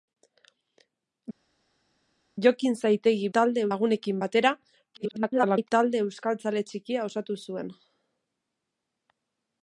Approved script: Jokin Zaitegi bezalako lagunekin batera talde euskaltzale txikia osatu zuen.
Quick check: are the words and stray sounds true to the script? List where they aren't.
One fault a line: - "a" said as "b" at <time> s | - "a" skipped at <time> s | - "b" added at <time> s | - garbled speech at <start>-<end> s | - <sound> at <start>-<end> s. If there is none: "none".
- "bezalako" said as "talde" at 3.4 s
- garbled speech at 4.9-5.7 s